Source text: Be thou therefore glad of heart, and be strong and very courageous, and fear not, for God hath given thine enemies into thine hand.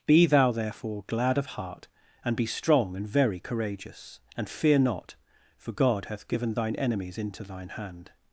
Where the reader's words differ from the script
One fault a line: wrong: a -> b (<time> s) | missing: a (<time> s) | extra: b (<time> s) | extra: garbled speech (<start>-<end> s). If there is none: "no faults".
no faults